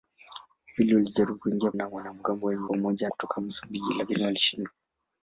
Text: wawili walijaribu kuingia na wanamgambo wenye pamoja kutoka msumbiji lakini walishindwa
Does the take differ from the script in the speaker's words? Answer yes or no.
no